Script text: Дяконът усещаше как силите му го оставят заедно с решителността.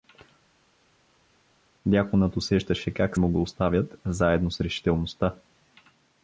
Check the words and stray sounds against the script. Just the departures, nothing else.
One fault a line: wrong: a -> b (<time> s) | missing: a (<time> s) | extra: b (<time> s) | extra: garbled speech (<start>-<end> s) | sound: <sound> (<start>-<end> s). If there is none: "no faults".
missing: силите (3.2 s)